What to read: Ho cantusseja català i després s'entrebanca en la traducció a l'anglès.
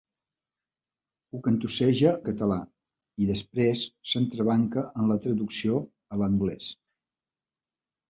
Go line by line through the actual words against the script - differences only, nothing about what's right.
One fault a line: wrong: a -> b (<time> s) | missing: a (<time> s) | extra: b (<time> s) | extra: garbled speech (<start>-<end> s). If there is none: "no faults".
no faults